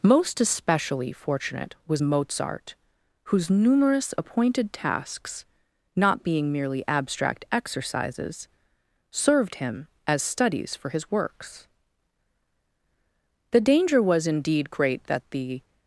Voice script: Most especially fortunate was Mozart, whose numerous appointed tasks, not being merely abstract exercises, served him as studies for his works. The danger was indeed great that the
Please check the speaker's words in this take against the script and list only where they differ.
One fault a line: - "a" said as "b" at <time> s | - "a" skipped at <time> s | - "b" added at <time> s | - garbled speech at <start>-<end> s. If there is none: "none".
none